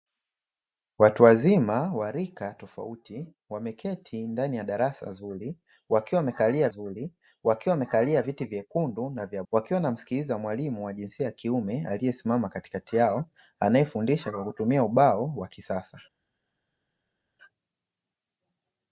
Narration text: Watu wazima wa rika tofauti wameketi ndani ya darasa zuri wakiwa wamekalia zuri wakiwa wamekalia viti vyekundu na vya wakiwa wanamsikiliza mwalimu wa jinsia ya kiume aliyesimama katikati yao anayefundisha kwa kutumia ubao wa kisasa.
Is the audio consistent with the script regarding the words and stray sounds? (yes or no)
yes